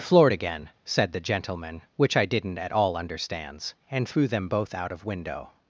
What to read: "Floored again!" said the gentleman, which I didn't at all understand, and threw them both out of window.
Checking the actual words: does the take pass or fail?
fail